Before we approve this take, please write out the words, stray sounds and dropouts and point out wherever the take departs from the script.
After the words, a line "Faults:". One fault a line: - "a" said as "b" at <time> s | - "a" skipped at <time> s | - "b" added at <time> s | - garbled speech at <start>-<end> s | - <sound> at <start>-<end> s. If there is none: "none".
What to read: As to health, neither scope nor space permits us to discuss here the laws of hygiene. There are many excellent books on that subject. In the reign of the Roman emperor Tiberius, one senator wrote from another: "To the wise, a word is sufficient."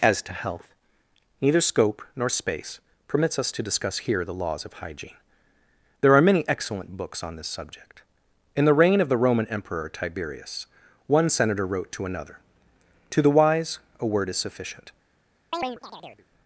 As to health, neither scope nor space permits us to discuss here the laws of hygiene. There are many excellent books on this subject. In the reign of the Roman emperor Tiberius, one senator wrote to another: "To the wise, a word is sufficient."
Faults:
- "that" said as "this" at 7.4 s
- "from" said as "to" at 11.9 s
- chirp at 15.5-16.3 s